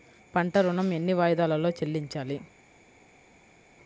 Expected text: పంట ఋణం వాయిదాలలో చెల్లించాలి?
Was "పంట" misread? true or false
false